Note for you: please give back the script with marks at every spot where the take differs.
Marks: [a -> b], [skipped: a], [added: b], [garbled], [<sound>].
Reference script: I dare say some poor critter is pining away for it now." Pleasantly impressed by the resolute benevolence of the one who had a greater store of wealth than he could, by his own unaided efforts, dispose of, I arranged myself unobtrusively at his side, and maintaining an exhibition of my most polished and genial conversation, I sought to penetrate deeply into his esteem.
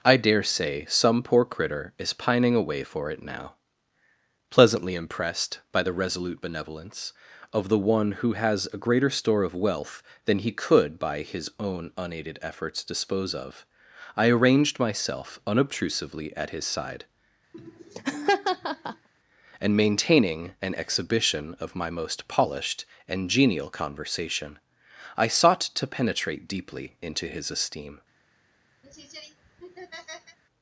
I dare say some poor critter is pining away for it now." Pleasantly impressed by the resolute benevolence of the one who [had -> has] a greater store of wealth than he could, by his own unaided efforts, dispose of, I arranged myself unobtrusively at his side, [laugh] and maintaining an exhibition of my most polished and genial conversation, I sought to penetrate deeply into his esteem. [laugh]